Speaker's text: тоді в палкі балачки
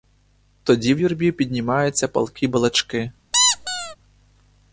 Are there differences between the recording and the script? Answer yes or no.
yes